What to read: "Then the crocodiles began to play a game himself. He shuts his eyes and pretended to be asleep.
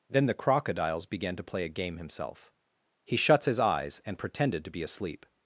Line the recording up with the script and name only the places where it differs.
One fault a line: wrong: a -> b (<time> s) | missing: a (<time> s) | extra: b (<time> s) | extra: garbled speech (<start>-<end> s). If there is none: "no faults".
no faults